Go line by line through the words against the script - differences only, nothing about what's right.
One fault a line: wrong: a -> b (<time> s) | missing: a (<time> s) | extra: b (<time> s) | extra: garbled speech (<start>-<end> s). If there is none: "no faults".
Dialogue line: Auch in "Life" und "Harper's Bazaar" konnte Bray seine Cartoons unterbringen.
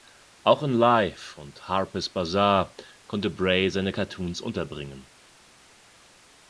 no faults